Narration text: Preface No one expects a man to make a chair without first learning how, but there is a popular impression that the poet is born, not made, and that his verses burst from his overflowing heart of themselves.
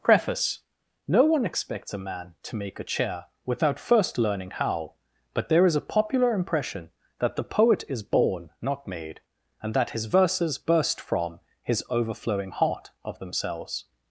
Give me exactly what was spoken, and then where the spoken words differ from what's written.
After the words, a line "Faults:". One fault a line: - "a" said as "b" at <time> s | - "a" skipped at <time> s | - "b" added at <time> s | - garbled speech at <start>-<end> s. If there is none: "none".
Preface No one expects a man to make a chair without first learning how, but there is a popular impression that the poet is born, not made, and that his verses burst from his overflowing heart of themselves.
Faults:
none